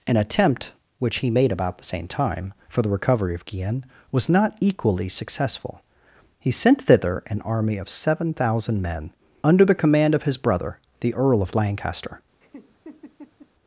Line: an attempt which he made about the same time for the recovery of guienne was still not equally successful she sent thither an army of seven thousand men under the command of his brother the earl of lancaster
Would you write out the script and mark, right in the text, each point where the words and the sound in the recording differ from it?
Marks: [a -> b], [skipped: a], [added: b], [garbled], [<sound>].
an attempt which he made about the same time for the recovery of guienne was [skipped: still] not equally successful [she -> he] sent thither an army of seven thousand men under the command of his brother the earl of lancaster [laugh]